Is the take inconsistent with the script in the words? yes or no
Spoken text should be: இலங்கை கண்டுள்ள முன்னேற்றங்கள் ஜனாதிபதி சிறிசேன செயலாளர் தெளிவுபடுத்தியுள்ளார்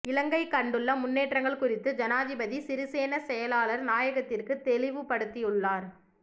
yes